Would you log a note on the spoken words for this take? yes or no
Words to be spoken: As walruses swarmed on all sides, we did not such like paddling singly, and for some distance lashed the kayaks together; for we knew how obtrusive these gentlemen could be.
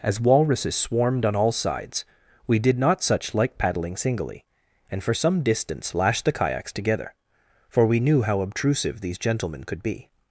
no